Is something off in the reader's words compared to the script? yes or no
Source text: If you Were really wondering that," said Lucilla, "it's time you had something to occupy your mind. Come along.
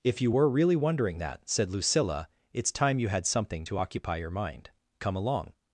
no